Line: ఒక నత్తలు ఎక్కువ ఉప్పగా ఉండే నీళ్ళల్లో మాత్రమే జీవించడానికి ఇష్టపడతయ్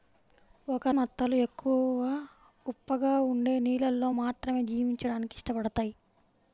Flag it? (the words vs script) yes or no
no